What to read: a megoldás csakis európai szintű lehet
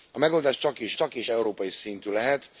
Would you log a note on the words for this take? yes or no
yes